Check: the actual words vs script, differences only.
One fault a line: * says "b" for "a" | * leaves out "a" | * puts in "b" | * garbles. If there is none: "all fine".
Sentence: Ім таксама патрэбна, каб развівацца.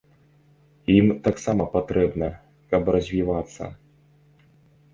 all fine